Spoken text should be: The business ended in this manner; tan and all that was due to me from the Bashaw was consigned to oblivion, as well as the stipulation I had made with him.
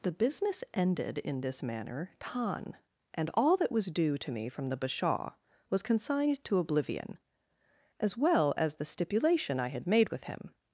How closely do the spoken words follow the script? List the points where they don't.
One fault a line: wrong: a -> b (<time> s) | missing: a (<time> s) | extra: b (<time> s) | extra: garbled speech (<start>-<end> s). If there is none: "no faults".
no faults